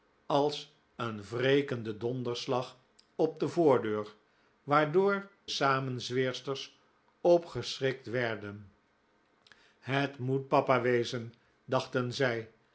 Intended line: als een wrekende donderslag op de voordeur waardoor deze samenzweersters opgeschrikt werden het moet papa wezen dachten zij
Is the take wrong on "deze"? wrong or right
wrong